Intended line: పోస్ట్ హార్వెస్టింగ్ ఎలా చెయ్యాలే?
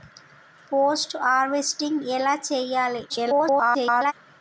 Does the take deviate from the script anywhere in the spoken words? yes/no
yes